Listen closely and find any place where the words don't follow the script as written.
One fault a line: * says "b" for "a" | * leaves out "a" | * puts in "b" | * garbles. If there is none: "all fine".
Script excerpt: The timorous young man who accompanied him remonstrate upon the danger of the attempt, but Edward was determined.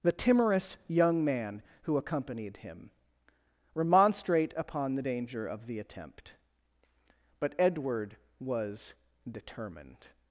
all fine